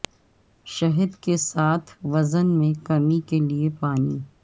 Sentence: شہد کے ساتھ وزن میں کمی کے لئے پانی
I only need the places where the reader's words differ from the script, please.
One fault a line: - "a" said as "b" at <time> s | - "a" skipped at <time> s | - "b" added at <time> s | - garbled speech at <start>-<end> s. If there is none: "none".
none